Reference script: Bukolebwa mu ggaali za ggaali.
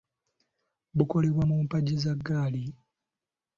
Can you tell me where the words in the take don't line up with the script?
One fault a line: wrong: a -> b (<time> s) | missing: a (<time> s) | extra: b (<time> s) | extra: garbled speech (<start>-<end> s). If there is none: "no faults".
wrong: ggaali -> mpagi (1.6 s)